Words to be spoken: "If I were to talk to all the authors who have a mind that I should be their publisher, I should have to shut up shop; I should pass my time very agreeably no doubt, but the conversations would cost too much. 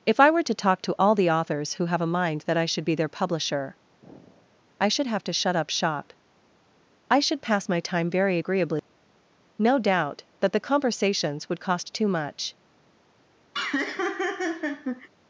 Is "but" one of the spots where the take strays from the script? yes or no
yes